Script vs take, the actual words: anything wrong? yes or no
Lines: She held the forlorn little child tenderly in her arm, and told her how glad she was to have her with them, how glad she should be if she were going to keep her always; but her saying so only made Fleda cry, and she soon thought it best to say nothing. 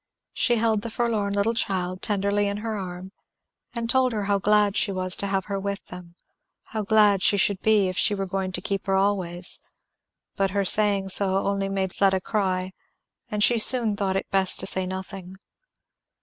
no